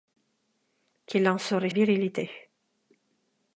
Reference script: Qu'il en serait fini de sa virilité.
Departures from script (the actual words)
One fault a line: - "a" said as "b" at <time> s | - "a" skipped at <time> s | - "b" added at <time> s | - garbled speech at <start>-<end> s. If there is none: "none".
- "fini de sa" skipped at 1.7 s